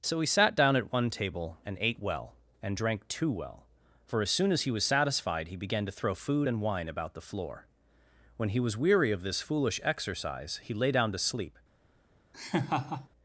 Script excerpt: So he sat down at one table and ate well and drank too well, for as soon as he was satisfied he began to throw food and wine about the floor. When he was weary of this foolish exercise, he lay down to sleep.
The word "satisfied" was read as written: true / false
true